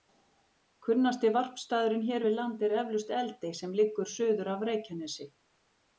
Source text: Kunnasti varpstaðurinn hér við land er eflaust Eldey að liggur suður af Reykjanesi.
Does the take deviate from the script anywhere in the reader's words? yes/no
yes